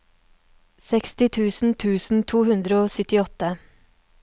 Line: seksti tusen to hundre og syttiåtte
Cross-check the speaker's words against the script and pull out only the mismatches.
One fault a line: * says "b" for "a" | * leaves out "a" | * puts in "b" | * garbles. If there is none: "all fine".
* puts in "tusen"